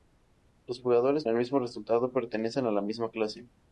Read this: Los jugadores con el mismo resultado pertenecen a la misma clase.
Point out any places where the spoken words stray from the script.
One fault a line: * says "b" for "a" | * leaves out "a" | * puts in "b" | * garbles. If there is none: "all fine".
* leaves out "con"